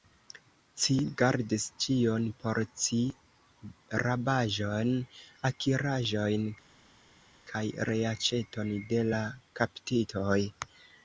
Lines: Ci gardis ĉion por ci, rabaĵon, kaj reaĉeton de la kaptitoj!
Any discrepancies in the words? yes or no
yes